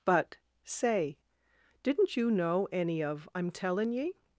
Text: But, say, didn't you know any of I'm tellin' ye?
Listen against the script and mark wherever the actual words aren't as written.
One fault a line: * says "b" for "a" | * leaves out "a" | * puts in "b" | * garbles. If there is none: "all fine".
all fine